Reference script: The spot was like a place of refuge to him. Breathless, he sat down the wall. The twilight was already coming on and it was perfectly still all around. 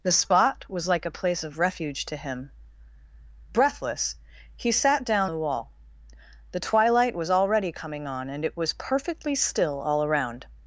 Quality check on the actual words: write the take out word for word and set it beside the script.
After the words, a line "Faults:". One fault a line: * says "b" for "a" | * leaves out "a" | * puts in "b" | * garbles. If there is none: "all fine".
The spot was like a place of refuge to him. Breathless, he sat down the wall. The twilight was already coming on and it was perfectly still all around.
Faults:
all fine